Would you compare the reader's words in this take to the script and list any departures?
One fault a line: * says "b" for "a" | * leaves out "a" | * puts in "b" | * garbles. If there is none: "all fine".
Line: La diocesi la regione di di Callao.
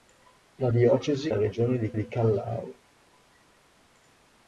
all fine